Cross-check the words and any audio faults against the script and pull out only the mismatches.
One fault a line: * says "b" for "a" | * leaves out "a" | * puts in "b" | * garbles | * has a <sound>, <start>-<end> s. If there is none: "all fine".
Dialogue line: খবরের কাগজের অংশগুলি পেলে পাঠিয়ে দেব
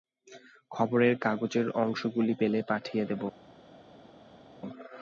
all fine